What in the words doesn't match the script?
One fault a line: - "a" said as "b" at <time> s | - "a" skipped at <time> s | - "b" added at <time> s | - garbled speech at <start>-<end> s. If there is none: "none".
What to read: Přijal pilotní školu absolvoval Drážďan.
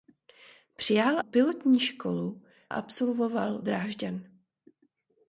none